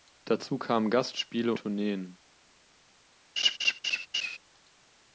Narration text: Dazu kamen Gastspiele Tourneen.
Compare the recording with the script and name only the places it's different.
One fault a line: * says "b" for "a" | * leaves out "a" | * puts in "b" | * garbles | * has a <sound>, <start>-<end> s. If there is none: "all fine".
* has a laugh, 3.4-4.4 s